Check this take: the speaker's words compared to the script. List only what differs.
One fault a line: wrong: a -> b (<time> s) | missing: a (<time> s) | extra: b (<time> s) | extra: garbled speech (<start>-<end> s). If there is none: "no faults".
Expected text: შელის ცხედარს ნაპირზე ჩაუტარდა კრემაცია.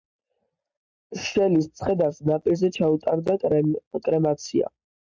no faults